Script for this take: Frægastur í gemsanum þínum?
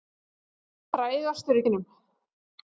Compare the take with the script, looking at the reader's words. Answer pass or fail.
fail